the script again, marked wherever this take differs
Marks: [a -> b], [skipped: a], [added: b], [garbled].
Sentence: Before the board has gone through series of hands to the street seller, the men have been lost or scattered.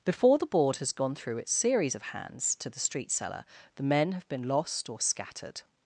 Before the board has gone through [added: its] series of hands to the street seller, the men have been lost or scattered.